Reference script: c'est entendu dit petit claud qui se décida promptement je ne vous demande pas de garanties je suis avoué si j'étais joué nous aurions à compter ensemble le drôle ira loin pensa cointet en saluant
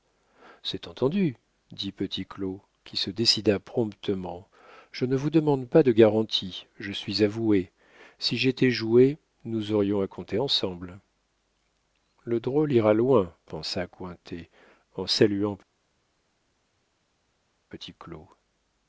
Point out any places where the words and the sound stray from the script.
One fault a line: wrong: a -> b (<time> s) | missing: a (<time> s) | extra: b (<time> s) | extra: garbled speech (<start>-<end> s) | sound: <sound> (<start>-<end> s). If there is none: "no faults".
no faults